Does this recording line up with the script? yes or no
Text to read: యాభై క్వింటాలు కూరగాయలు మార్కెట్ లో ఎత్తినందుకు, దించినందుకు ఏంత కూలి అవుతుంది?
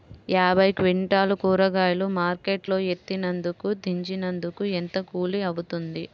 yes